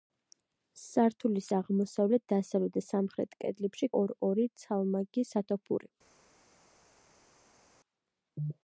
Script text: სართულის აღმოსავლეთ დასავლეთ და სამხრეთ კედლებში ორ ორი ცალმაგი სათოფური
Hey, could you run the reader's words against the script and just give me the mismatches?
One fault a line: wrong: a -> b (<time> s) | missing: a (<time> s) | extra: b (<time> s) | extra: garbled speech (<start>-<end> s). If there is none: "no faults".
no faults